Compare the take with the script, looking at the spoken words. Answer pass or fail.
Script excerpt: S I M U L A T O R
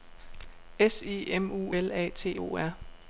pass